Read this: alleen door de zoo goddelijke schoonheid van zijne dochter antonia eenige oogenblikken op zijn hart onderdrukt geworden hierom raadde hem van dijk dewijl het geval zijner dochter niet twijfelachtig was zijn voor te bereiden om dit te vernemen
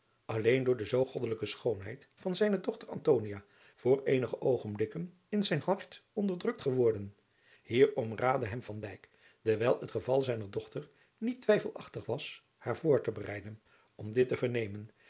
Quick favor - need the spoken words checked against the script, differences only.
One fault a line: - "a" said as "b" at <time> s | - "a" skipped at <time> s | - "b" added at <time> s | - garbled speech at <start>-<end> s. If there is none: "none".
- "voor" added at 3.7 s
- "op" said as "in" at 5.3 s
- "zijn" said as "haar" at 12.6 s